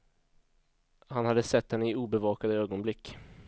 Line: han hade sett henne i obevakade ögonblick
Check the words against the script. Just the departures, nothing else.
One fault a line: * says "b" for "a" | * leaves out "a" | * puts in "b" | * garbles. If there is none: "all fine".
all fine